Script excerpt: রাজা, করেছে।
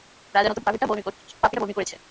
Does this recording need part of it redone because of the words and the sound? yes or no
yes